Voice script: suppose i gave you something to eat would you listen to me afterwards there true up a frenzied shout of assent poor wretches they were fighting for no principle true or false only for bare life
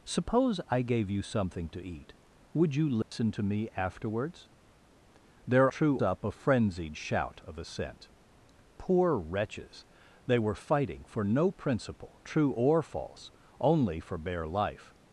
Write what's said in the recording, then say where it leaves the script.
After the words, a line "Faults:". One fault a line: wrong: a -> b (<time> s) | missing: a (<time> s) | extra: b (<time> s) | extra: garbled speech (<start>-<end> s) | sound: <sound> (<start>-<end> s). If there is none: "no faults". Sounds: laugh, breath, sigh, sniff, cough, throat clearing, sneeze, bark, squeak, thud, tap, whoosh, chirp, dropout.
suppose i gave you something to eat would you listen to me afterwards there true up a frenzied shout of assent poor wretches they were fighting for no principle true or false only for bare life
Faults:
sound: dropout (3.0-3.1 s)